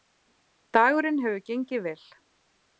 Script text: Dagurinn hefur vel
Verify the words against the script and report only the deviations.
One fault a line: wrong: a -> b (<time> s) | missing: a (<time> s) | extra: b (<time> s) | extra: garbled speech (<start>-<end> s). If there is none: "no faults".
extra: gengið (1.5 s)